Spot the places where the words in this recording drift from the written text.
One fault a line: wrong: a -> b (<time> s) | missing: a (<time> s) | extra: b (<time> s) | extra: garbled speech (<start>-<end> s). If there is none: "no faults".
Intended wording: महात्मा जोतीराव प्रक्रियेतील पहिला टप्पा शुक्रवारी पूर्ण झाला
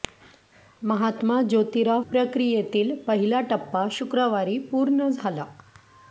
no faults